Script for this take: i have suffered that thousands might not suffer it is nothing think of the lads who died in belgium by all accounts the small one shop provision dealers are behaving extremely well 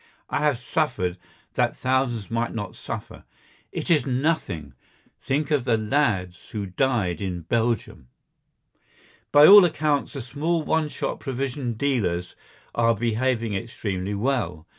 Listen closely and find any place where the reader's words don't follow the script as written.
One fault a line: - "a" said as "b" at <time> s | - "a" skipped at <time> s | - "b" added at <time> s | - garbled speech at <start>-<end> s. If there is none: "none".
none